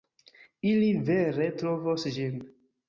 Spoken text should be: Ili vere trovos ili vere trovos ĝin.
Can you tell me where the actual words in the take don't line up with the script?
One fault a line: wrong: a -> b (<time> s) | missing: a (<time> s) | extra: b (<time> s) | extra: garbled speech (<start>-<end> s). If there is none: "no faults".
missing: ili vere trovos (2.1 s)